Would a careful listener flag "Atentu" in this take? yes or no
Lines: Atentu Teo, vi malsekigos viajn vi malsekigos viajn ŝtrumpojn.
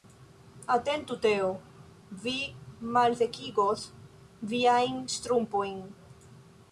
no